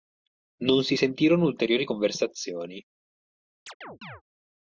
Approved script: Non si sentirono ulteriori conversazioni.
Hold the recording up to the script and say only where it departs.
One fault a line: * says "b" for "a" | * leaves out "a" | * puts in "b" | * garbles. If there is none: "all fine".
all fine